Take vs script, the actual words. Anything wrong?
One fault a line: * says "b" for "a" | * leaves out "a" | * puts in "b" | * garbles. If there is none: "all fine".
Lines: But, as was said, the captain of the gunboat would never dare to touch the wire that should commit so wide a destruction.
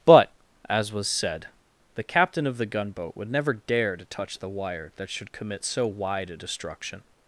all fine